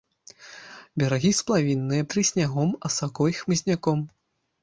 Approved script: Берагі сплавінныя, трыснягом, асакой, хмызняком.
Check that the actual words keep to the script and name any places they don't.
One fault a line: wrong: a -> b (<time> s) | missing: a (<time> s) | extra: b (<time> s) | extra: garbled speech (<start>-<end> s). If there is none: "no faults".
no faults